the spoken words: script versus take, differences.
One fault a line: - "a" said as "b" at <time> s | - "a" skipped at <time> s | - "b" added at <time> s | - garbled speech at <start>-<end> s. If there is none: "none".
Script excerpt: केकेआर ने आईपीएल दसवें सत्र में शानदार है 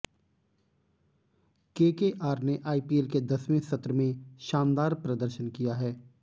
- "के" added at 3.1 s
- "प्रदर्शन किया" added at 5.0 s